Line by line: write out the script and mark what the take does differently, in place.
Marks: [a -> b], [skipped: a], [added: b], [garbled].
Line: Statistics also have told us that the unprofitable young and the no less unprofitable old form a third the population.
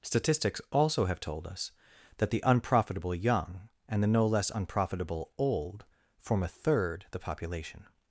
Statistics also have told us that the unprofitable young and the no less unprofitable old form a third the population.